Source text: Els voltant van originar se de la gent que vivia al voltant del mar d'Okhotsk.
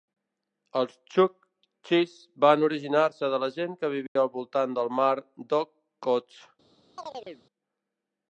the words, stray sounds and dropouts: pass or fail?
fail